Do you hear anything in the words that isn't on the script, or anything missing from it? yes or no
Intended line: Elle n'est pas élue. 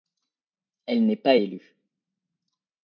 no